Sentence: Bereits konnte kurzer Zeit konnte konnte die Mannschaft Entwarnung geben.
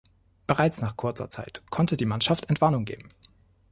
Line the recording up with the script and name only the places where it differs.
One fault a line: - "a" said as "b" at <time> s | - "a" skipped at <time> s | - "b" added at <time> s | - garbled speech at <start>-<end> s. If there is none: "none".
- "konnte" said as "nach" at 0.8 s
- "konnte" skipped at 2.0 s